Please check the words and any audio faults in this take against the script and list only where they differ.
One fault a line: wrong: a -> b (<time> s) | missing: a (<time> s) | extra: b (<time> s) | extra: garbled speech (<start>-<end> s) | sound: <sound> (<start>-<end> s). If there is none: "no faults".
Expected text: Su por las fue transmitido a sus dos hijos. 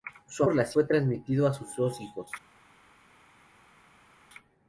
no faults